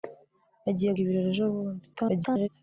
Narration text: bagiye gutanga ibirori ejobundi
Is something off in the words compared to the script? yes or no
yes